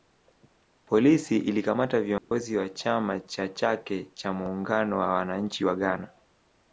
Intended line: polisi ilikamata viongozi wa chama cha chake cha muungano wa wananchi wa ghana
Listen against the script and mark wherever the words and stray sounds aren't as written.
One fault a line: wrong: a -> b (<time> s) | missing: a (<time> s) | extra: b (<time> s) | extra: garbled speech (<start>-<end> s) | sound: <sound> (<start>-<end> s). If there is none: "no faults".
sound: dropout (2.2-2.3 s)